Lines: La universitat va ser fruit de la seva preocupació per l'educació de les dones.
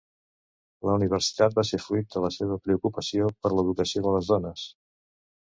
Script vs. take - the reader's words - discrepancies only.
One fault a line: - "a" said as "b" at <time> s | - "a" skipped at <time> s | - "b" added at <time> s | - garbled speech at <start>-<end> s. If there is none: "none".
none